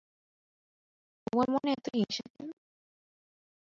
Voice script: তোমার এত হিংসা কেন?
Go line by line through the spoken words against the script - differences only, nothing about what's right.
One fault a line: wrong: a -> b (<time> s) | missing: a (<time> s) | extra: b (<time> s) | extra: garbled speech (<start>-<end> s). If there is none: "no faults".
extra: মনে (1.5 s)